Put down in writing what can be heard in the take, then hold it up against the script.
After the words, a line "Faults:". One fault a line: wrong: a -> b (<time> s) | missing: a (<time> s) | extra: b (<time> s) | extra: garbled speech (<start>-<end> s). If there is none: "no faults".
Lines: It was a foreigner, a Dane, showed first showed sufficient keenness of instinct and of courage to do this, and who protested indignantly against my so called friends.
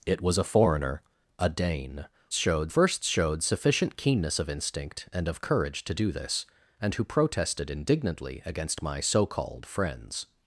It was a foreigner, a Dane, showed first showed sufficient keenness of instinct and of courage to do this, and who protested indignantly against my so called friends.
Faults:
no faults